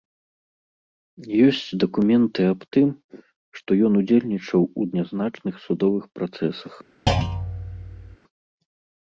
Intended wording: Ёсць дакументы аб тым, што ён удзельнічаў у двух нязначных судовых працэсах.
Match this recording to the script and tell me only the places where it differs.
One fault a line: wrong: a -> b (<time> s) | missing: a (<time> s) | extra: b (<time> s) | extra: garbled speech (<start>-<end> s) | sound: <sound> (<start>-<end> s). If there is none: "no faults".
missing: двух (4.9 s)
sound: thud (7.1-8.2 s)